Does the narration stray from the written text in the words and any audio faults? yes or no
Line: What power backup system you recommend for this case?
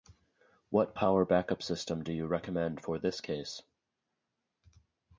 yes